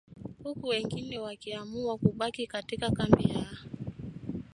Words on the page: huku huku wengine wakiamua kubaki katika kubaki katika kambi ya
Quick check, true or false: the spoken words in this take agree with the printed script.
false